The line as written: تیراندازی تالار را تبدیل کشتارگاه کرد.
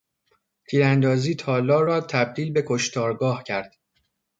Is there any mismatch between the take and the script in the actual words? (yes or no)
yes